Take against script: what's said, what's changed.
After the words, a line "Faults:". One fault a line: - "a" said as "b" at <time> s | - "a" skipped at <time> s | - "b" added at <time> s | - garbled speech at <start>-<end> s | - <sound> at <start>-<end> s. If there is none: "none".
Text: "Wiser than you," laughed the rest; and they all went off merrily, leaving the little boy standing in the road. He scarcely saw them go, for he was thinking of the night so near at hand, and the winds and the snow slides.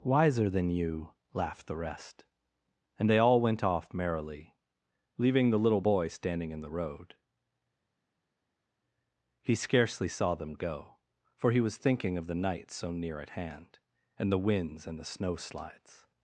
"Wiser than you," laughed the rest; and they all went off merrily, leaving the little boy standing in the road. He scarcely saw them go, for he was thinking of the night so near at hand, and the winds and the snow slides.
Faults:
none